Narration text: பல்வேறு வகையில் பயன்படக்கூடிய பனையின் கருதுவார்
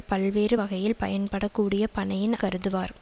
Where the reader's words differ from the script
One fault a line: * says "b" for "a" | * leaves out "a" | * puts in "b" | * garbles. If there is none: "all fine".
all fine